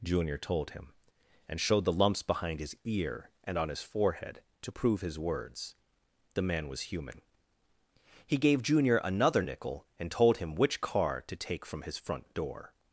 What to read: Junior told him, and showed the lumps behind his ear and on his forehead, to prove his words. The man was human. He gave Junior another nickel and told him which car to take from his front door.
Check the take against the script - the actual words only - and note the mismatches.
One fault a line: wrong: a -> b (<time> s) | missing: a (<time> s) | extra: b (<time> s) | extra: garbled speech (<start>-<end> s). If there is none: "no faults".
no faults